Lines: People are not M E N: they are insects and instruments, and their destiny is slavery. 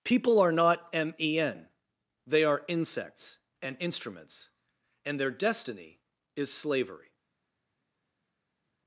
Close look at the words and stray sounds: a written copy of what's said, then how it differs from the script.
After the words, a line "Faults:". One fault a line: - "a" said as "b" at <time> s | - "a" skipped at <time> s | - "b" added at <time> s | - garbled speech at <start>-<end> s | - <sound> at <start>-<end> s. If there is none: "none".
People are not M E N: they are insects and instruments, and their destiny is slavery.
Faults:
none